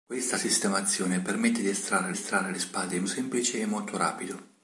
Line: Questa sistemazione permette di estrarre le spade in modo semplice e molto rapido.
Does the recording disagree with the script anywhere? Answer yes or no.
yes